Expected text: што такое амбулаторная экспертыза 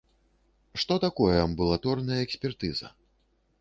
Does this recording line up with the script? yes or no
yes